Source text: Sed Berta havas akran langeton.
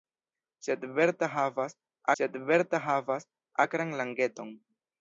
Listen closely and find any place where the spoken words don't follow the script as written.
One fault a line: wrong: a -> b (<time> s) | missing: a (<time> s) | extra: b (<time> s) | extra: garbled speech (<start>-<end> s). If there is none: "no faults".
extra: sed Berta havas (2.2 s)